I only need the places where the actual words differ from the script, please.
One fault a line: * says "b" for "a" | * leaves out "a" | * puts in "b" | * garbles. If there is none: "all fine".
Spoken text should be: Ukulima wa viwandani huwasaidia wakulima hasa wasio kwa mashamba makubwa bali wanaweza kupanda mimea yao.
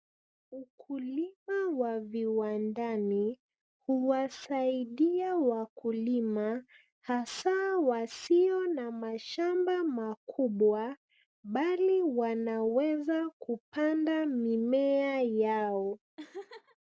* says "na" for "kwa"